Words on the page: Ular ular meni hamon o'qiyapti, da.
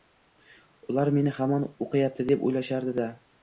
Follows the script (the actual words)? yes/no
no